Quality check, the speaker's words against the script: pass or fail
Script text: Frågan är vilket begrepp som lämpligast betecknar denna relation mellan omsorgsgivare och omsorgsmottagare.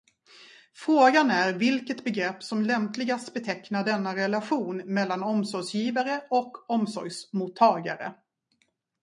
pass